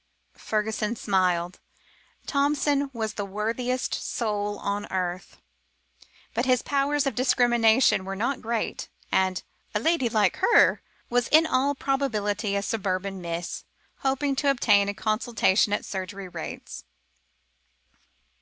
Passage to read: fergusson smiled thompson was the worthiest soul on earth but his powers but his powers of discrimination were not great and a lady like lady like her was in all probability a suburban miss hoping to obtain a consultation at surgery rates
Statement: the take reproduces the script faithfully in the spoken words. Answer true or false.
false